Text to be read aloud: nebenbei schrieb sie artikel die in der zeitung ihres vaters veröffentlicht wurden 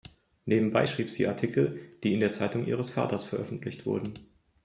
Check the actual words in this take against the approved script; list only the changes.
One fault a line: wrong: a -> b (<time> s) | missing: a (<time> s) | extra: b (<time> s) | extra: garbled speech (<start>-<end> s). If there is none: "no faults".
no faults